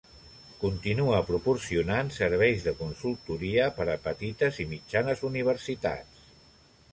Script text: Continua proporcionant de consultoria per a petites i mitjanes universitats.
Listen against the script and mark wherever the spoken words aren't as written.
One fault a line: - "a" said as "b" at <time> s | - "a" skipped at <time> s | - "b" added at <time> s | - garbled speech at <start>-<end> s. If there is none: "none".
- "serveis" added at 2.1 s